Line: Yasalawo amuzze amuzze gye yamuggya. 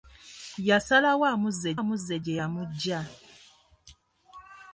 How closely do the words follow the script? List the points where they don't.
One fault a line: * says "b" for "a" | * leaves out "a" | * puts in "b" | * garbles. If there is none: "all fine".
all fine